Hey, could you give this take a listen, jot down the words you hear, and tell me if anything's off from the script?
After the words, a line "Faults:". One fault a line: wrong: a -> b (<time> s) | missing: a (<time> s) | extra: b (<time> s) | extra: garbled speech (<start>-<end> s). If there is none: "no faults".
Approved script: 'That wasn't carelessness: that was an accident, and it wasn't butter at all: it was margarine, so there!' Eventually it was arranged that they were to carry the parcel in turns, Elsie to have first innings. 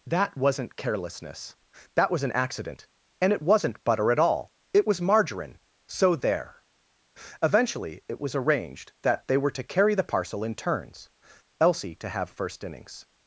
'That wasn't carelessness: that was an accident, and it wasn't butter at all: it was margarine, so there!' Eventually it was arranged that they were to carry the parcel in turns, Elsie to have first innings.
Faults:
no faults